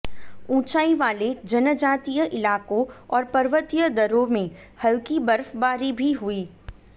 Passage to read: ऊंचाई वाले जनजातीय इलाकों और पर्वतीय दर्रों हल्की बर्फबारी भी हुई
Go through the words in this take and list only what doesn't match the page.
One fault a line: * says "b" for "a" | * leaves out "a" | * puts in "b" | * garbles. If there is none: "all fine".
* puts in "में"